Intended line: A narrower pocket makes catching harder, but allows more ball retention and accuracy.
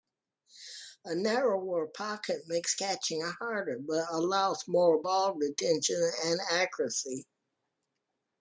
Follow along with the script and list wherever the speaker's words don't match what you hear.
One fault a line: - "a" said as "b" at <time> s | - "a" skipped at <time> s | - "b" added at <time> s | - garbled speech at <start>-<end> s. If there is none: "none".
none